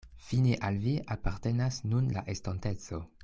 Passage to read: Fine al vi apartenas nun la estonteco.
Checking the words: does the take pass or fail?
pass